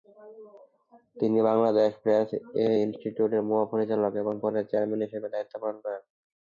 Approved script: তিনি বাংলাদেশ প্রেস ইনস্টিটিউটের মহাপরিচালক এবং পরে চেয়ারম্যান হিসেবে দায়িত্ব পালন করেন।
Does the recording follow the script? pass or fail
pass